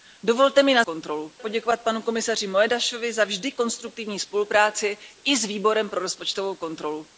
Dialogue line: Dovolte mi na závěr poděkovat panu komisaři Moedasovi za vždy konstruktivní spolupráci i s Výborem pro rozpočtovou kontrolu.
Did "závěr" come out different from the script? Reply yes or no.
yes